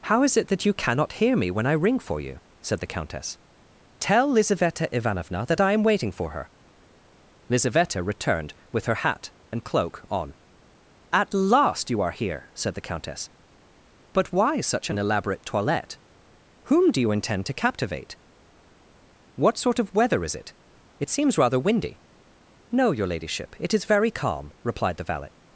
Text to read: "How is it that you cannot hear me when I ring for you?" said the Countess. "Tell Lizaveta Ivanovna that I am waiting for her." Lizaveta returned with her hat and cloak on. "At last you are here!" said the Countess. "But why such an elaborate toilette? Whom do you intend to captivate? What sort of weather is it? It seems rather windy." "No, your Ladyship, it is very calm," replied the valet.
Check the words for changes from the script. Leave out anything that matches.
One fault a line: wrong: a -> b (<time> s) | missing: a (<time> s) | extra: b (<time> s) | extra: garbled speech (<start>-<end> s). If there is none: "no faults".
no faults